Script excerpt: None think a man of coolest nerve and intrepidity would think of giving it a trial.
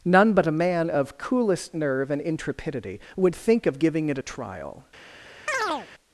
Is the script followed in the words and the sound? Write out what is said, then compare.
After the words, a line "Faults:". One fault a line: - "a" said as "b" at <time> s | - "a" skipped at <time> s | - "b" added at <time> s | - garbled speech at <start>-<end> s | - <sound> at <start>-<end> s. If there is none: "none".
None but a man of coolest nerve and intrepidity would think of giving it a trial.
Faults:
- "think" said as "but" at 0.3 s
- chirp at 5.5-5.9 s